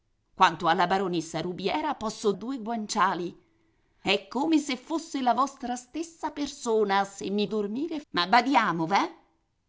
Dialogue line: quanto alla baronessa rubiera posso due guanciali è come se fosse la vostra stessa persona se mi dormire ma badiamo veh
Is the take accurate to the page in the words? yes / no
yes